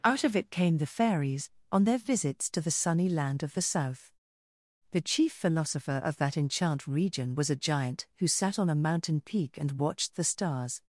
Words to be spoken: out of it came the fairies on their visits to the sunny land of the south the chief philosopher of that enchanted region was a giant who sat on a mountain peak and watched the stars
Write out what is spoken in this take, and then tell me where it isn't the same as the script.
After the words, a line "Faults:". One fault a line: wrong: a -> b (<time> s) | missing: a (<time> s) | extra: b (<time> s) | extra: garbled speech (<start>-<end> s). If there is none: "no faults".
out of it came the fairies on their visits to the sunny land of the south the chief philosopher of that enchant region was a giant who sat on a mountain peak and watched the stars
Faults:
wrong: enchanted -> enchant (6.3 s)